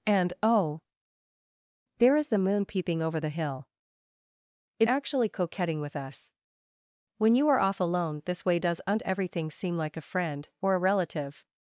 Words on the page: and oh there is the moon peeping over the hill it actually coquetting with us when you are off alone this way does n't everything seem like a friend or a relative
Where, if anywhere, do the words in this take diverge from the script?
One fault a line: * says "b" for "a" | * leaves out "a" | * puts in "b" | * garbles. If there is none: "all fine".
all fine